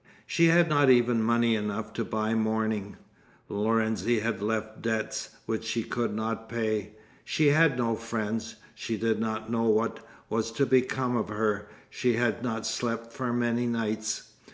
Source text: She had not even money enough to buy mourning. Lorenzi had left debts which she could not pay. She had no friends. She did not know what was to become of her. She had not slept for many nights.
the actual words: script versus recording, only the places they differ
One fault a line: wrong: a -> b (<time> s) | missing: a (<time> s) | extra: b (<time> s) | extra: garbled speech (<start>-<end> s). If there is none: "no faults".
no faults